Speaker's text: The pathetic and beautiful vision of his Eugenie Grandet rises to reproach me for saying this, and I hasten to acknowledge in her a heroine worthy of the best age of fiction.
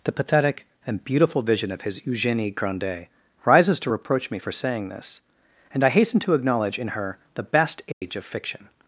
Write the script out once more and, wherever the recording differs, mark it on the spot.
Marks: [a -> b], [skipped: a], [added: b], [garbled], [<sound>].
The pathetic and beautiful vision of his Eugenie Grandet rises to reproach me for saying this, and I hasten to acknowledge in her [skipped: a heroine worthy of] the best age [dropout] of fiction.